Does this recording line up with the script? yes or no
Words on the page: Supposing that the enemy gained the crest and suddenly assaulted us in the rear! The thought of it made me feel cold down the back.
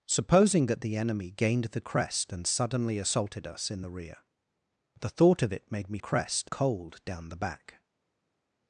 no